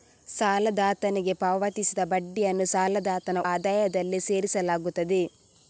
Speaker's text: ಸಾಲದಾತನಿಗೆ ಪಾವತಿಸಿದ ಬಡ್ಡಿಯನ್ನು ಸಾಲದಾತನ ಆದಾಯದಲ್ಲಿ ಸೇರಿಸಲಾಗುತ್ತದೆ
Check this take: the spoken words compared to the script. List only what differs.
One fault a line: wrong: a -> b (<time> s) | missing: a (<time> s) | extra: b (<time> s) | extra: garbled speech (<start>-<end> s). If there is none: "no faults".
no faults